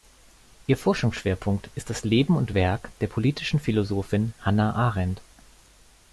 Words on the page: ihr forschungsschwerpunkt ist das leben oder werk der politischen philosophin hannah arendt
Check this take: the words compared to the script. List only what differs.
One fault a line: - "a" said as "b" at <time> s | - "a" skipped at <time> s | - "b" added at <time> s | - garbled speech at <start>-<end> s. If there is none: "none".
- "oder" said as "und" at 2.4 s